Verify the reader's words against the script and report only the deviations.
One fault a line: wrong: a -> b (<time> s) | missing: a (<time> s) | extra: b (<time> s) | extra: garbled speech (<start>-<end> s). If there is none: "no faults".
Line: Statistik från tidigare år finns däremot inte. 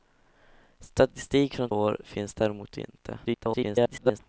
missing: tidigare (1.7 s)
extra: garbled speech (3.2-4.2 s)